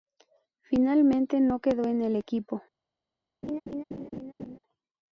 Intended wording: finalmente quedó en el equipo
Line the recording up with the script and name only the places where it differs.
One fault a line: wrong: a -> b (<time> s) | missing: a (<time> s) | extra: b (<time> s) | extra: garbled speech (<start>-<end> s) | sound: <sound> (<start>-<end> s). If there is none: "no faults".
extra: no (1.4 s)
sound: laugh (3.4-4.6 s)